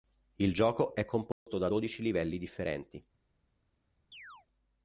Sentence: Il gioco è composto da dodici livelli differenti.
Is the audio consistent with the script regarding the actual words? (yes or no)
yes